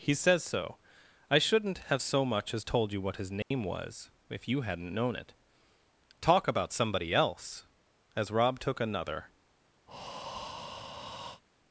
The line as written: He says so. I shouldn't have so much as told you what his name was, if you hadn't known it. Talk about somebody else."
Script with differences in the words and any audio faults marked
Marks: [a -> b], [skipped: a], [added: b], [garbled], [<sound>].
He says so. I shouldn't have so much as told you what his name [dropout] was, if you hadn't known it. Talk about somebody else." [added: As Rob took another] [breath]